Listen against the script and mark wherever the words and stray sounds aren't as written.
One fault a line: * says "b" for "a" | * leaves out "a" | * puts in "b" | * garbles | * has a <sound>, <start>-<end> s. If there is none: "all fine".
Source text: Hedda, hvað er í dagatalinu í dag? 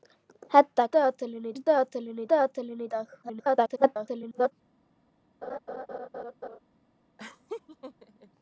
* says "dagatalinu" for "hvað"
* puts in "dagatalinu"
* garbles
* has a laugh, 5.4-6.6 s
* has a laugh, 7.2-8.3 s